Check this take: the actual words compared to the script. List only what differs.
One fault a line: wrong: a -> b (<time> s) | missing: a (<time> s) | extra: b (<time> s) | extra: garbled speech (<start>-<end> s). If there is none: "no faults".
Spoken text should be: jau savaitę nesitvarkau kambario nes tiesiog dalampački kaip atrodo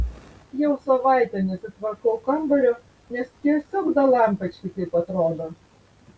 no faults